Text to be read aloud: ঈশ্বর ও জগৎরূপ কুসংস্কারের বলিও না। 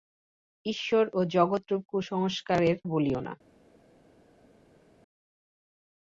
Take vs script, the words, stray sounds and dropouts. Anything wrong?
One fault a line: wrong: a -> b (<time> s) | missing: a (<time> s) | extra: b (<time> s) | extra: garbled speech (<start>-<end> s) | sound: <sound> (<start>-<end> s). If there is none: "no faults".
no faults